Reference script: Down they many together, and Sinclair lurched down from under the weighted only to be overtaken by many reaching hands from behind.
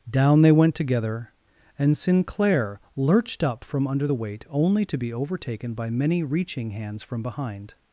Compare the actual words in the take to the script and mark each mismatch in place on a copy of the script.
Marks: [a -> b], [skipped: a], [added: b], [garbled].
Down they [many -> went] together, and Sinclair lurched [down -> up] from under the [weighted -> weight] only to be overtaken by many reaching hands from behind.